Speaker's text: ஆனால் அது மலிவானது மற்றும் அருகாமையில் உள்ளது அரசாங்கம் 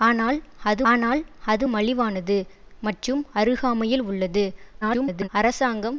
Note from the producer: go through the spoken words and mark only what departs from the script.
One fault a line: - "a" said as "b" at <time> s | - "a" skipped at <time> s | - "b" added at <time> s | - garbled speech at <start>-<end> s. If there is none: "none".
- "ஆனால் அது" added at 0.8 s
- garbled speech at 4.8-5.3 s